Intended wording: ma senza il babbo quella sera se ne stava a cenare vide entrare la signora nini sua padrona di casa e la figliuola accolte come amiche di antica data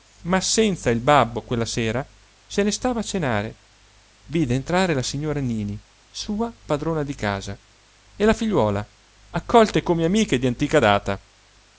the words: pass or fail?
pass